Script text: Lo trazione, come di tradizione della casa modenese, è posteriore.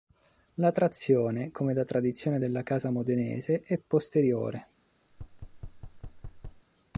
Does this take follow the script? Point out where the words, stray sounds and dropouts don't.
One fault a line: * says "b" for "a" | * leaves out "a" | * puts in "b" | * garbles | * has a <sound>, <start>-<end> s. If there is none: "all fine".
* says "La" for "Lo"
* says "da" for "di"
* has a thud, 5.1-6.7 s